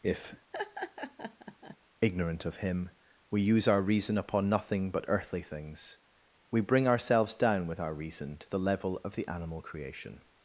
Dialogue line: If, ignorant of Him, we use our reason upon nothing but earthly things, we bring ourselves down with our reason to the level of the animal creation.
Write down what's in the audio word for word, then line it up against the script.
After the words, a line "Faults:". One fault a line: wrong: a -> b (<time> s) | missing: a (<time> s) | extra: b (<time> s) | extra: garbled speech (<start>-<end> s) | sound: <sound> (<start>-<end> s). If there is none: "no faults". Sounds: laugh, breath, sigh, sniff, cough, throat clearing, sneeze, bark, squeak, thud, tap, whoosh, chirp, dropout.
If, ignorant of Him, we use our reason upon nothing but earthly things, we bring ourselves down with our reason to the level of the animal creation.
Faults:
sound: laugh (0.5-1.8 s)